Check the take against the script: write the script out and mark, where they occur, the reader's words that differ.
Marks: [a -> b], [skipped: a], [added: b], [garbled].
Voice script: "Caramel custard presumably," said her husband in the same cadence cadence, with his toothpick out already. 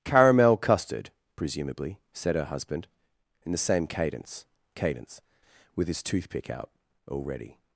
"Caramel custard presumably," said her husband in the same cadence cadence, with his toothpick out already.